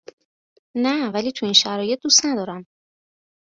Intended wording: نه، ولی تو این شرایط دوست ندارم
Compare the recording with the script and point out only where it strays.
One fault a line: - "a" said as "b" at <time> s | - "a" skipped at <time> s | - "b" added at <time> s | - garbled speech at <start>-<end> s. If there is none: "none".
none